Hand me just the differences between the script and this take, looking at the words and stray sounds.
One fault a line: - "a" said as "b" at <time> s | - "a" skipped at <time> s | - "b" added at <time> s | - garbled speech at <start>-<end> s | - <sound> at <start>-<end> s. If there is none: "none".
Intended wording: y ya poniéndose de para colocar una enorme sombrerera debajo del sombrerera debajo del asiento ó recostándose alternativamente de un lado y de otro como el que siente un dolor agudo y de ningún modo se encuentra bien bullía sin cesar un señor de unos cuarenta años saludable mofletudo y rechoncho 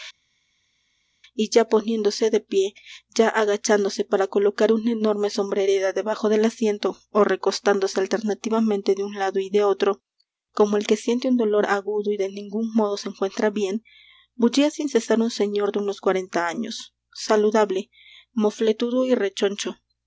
- "pie ya agachándose" added at 2.4 s
- "sombrerera debajo del" skipped at 6.4 s